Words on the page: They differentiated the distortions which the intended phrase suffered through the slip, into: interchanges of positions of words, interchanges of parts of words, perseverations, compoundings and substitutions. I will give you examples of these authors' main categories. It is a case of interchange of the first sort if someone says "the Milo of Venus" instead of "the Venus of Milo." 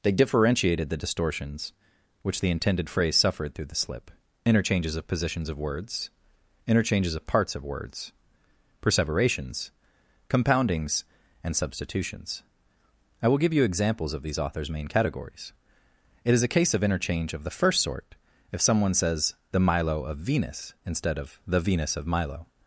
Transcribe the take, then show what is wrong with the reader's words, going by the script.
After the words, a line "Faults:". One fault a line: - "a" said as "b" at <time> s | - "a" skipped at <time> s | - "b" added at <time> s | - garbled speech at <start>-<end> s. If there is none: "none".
They differentiated the distortions which the intended phrase suffered through the slip: interchanges of positions of words, interchanges of parts of words, perseverations, compoundings and substitutions. I will give you examples of these authors' main categories. It is a case of interchange of the first sort if someone says "the Milo of Venus" instead of "the Venus of Milo."
Faults:
- "into" skipped at 4.1 s